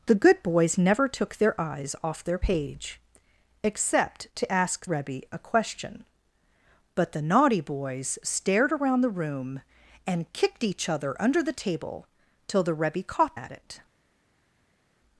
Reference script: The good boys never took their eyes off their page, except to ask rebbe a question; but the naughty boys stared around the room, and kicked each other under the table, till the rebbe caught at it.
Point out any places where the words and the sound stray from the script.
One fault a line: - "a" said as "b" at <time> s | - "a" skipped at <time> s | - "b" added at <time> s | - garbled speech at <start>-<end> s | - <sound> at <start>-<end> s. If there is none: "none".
none